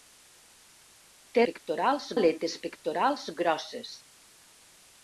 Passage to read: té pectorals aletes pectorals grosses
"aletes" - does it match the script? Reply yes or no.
yes